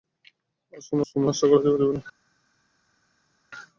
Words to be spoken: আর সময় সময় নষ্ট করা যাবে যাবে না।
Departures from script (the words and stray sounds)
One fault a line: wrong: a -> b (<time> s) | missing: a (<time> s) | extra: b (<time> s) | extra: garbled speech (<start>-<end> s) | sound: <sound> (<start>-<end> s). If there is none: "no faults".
no faults